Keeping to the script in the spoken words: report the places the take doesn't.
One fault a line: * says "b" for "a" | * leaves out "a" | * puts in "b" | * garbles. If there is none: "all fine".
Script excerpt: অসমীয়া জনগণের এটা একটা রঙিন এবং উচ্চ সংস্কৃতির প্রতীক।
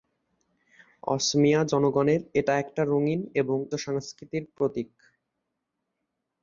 * leaves out "উচ্চ"